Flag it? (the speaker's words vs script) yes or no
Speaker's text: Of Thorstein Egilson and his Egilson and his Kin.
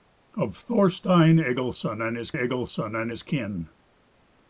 no